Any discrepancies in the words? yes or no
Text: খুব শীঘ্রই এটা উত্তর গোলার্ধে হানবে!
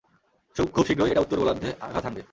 yes